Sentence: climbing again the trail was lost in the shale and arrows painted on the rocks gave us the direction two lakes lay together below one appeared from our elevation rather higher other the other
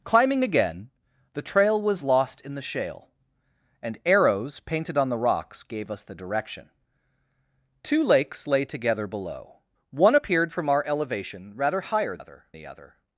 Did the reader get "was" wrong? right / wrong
right